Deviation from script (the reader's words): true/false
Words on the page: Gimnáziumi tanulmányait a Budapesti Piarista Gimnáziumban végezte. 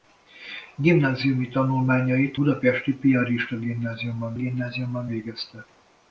true